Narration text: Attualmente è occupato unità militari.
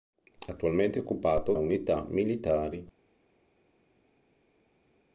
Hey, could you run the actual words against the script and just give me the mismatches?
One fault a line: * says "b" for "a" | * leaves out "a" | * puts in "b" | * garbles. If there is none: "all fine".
all fine